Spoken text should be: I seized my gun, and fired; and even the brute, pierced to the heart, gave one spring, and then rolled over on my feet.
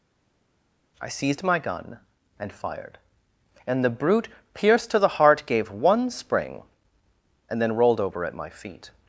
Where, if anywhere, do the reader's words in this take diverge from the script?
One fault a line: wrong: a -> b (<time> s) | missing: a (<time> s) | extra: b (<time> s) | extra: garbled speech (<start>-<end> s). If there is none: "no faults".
missing: even (3.8 s)
wrong: on -> at (8.2 s)